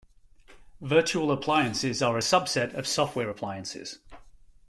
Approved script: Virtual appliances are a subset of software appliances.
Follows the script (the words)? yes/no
yes